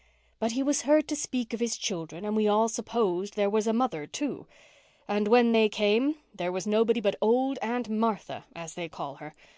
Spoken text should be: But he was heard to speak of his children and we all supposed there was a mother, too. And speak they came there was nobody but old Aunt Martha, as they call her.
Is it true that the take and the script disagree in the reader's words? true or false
true